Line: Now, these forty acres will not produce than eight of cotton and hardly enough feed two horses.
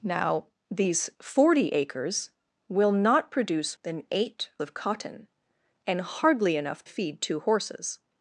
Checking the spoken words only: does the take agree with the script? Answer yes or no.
yes